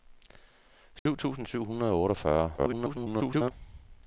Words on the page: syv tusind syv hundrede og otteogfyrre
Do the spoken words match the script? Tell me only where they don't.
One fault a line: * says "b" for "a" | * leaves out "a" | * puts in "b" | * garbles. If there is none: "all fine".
* garbles